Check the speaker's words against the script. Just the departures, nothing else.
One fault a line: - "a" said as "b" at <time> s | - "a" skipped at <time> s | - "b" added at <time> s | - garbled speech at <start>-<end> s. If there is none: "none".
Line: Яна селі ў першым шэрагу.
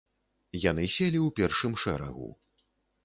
- "Яна" said as "Яны" at 0.7 s